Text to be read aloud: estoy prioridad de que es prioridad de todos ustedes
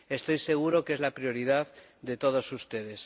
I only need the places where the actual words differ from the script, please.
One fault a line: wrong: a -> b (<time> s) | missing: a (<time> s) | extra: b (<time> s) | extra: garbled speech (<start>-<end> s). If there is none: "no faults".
wrong: prioridad -> seguro (0.4 s)
extra: la (1.0 s)